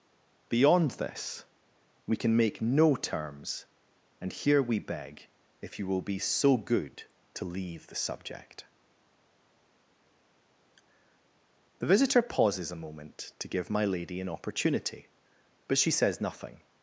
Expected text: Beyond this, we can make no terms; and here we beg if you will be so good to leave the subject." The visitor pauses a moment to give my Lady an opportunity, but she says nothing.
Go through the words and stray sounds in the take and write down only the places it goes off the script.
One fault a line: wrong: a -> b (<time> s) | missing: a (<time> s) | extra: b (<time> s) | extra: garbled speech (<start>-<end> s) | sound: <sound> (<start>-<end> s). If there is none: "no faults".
no faults